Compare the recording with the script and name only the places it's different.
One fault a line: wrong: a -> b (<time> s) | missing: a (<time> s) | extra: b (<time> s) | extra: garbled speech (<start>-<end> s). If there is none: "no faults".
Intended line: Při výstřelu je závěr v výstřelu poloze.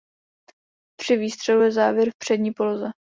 wrong: výstřelu -> přední (2.2 s)